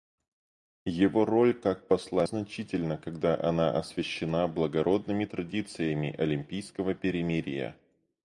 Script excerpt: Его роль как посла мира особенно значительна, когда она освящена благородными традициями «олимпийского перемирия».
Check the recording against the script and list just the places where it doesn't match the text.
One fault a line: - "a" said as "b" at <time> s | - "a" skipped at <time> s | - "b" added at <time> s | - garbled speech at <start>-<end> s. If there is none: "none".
- "мира особенно" skipped at 2.2 s